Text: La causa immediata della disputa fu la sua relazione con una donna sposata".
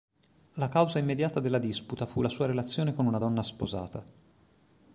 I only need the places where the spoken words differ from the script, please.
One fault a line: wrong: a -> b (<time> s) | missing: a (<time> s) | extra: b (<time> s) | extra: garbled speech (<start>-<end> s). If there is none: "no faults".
no faults